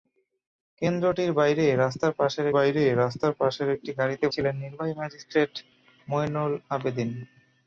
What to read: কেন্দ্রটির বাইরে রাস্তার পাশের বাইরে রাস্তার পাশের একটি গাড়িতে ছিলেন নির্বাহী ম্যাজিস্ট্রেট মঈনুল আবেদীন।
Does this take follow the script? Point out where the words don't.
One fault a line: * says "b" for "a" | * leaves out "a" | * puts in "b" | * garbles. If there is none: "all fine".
all fine